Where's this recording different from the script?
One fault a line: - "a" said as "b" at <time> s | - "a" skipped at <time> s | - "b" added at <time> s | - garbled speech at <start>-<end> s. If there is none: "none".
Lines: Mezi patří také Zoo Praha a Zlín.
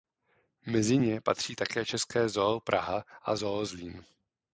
- "ně" added at 1.0 s
- "české" added at 1.9 s
- "Zoo" added at 3.3 s